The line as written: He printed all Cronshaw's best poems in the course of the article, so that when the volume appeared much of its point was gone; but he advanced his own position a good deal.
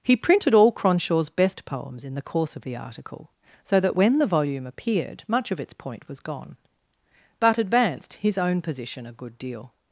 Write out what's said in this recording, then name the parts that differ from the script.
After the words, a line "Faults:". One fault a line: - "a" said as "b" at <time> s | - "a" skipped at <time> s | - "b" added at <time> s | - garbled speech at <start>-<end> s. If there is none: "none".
He printed all Cronshaw's best poems in the course of the article, so that when the volume appeared much of its point was gone; but advanced his own position a good deal.
Faults:
- "he" skipped at 7.6 s